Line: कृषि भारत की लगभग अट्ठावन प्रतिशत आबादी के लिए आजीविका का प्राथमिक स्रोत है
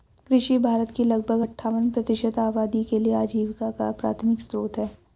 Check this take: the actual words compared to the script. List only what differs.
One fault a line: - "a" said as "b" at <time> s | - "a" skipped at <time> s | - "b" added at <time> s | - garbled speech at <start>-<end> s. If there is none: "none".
none